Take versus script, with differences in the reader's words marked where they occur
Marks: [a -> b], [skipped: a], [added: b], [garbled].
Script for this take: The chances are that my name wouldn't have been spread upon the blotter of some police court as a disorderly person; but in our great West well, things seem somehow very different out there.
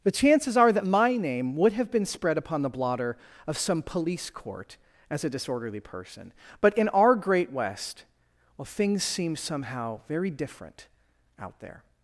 The chances are that my name [wouldn't -> would] have been spread upon the blotter of some police court as a disorderly person; but in our great West well, things seem somehow very different out there.